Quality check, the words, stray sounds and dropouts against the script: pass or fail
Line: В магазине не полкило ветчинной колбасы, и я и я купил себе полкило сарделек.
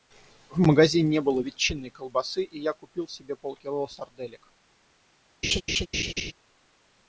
fail